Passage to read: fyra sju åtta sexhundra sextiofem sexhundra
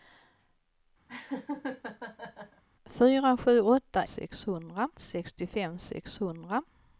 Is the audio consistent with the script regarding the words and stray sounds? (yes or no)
no